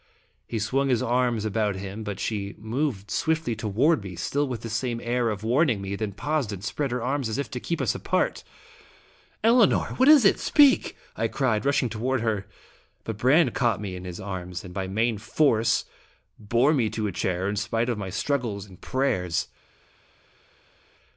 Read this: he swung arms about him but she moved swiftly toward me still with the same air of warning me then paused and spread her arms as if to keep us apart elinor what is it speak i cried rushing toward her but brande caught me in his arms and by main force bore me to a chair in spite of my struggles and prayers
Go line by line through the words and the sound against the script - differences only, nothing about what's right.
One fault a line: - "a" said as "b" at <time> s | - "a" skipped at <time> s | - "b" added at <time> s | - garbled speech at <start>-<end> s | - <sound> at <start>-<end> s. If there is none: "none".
- "his" added at 0.9 s